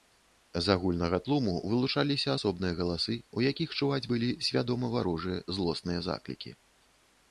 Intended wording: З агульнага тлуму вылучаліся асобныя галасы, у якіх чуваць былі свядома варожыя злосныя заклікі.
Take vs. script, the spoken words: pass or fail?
pass